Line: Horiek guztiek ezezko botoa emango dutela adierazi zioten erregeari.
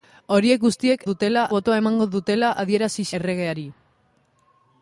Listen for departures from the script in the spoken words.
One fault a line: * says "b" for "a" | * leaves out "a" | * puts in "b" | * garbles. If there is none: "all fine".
* says "dutela" for "ezezko"
* leaves out "zioten"